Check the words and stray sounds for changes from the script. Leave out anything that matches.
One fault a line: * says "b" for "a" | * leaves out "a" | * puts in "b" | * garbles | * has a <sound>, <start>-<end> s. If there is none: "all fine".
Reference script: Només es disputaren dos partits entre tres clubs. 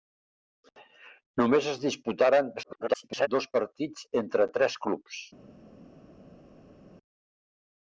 * garbles